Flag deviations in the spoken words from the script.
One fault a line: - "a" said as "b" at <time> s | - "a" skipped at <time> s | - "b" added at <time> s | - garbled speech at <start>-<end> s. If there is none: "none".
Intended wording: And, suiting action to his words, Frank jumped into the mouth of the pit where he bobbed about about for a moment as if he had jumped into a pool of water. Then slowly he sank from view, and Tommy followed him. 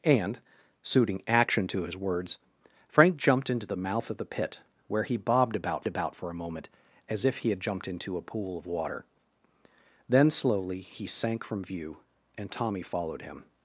none